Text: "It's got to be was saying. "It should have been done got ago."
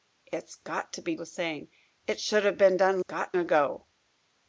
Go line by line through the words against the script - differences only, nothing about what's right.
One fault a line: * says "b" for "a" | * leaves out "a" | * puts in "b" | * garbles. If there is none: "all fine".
all fine